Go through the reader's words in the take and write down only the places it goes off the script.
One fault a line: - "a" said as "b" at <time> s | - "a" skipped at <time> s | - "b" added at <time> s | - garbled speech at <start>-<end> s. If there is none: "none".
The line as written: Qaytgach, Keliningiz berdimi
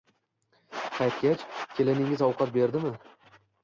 - "ovqat" added at 2.3 s